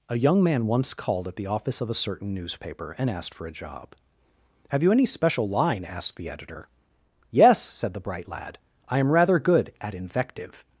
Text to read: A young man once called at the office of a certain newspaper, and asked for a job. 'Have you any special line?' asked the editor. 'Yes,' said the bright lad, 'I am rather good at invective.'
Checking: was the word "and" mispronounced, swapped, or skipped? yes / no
no